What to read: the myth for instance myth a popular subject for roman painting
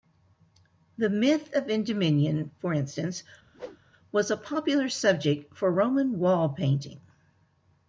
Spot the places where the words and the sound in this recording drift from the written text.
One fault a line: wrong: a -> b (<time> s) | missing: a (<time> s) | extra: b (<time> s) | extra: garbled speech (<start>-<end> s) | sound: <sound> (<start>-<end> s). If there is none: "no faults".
extra: of endymion (1.5 s)
sound: whoosh (3.5-3.8 s)
wrong: myth -> was (4.1 s)
extra: wall (6.2 s)